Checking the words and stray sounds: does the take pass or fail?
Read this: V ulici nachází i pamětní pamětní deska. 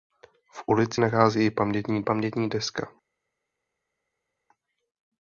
pass